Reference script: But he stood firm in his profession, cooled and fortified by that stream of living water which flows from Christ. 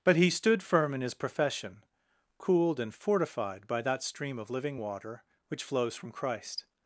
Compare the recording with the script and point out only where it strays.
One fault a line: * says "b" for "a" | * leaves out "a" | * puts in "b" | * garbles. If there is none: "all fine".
all fine